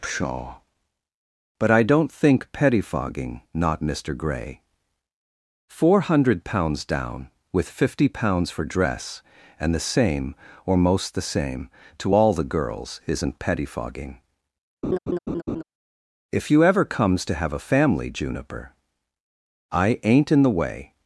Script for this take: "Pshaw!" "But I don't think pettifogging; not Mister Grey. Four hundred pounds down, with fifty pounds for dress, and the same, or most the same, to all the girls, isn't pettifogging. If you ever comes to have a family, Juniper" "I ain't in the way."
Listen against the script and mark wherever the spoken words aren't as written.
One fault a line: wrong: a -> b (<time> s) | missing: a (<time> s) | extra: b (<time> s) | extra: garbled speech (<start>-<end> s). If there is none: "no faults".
no faults